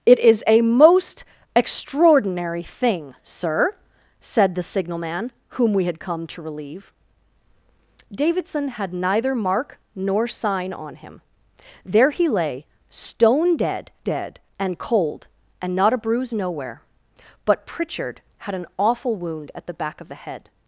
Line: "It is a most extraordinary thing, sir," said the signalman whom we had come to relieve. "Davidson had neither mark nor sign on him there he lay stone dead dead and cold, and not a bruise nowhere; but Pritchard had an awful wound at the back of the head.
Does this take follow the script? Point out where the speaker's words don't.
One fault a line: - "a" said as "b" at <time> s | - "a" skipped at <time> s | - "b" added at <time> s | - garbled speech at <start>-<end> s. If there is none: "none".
none